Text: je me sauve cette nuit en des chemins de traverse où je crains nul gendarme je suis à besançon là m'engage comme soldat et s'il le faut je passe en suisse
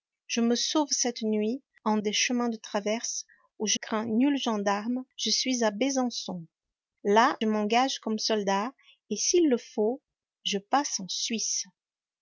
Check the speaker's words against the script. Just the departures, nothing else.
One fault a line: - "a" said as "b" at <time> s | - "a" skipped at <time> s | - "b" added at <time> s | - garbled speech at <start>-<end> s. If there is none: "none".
none